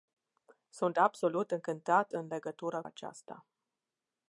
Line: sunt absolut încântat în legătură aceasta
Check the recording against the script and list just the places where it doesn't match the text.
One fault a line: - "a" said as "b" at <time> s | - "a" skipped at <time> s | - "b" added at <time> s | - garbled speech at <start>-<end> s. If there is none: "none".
none